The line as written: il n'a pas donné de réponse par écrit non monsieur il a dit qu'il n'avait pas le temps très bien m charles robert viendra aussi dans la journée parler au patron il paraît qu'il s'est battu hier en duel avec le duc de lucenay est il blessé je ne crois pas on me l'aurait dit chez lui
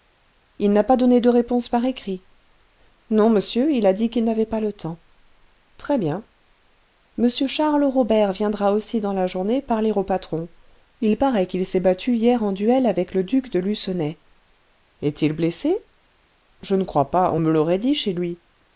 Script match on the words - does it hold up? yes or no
yes